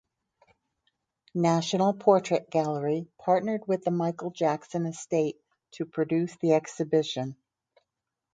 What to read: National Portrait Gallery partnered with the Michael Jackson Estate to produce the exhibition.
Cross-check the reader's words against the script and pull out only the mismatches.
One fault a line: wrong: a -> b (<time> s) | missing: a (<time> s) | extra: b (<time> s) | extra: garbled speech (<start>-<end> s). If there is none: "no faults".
no faults